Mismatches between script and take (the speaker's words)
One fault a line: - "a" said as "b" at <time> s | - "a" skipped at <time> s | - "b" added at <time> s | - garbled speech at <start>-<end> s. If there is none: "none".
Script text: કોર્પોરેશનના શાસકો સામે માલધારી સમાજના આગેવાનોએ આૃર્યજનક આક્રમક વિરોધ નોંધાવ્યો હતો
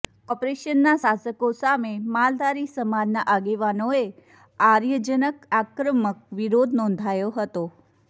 none